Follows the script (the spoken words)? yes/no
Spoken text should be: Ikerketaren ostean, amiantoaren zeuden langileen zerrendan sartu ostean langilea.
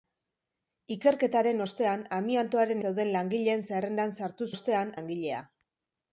yes